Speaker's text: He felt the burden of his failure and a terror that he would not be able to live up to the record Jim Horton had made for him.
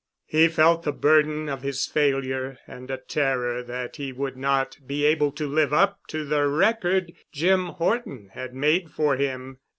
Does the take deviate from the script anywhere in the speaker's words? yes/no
no